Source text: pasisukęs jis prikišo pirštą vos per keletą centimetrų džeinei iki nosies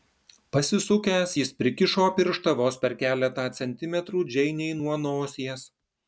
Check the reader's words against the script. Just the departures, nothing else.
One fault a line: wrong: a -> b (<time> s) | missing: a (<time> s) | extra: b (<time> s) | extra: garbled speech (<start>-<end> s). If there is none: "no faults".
wrong: iki -> nuo (4.8 s)